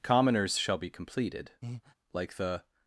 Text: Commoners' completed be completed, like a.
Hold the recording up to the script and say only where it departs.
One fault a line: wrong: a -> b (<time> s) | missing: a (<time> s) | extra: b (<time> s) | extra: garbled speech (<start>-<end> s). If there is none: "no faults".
wrong: completed -> shall (0.5 s)
wrong: a -> the (2.4 s)